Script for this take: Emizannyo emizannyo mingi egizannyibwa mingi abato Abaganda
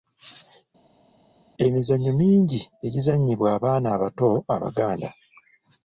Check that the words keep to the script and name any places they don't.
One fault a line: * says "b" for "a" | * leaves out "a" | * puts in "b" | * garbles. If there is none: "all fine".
* leaves out "emizannyo"
* says "abaana" for "mingi"